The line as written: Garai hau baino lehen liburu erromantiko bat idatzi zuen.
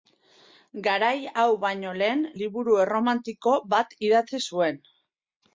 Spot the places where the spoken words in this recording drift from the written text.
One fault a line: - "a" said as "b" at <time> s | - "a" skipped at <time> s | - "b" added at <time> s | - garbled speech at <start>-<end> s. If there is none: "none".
none